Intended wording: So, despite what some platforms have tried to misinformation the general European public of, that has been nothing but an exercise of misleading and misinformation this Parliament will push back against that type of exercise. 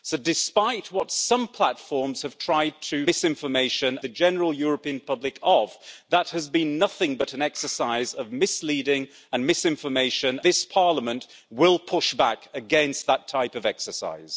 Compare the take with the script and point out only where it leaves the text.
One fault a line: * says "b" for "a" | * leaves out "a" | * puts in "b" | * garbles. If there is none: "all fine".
all fine